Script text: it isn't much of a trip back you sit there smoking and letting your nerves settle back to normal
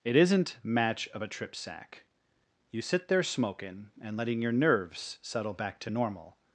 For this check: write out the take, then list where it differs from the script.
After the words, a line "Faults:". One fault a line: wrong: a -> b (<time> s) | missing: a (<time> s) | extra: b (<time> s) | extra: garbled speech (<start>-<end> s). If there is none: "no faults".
it isn't match of a trip sack you sit there smoking and letting your nerves settle back to normal
Faults:
wrong: much -> match (0.6 s)
wrong: back -> sack (1.5 s)